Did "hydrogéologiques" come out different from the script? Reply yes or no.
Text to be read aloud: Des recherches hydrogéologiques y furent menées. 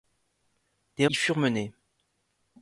yes